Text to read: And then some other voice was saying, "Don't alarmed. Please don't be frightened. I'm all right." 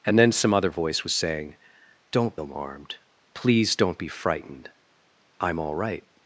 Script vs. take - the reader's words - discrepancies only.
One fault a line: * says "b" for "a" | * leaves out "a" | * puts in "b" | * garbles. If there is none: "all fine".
all fine